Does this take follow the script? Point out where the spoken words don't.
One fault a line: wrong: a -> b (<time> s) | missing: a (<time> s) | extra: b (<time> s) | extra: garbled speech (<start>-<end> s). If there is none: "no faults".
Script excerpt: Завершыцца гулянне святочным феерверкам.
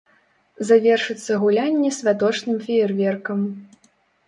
no faults